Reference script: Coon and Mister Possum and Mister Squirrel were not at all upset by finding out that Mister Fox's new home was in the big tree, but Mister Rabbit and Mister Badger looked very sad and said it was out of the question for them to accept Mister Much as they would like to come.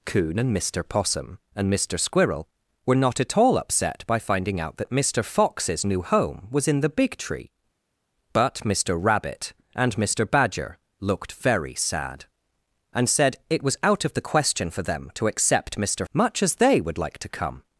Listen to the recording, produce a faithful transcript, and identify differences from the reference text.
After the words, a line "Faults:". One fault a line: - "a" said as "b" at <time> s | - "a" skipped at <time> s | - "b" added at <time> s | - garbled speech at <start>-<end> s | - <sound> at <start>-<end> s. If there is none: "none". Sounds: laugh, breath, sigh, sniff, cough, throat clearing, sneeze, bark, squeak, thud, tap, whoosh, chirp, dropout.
Coon and Mister Possum and Mister Squirrel were not at all upset by finding out that Mister Fox's new home was in the big tree, but Mister Rabbit and Mister Badger looked very sad and said it was out of the question for them to accept Mister Much as they would like to come.
Faults:
none